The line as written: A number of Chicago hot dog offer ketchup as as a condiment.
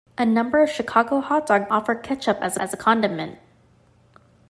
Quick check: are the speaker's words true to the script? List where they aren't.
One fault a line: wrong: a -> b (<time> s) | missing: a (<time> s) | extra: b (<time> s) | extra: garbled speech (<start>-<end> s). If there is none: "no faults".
no faults